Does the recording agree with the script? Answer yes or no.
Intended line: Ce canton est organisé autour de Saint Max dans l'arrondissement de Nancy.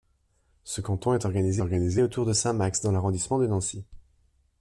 no